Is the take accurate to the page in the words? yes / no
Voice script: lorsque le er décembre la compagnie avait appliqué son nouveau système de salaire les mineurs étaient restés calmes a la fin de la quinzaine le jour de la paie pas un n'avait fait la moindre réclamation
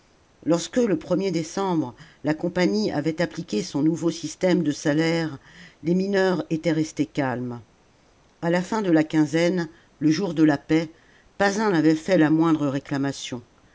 yes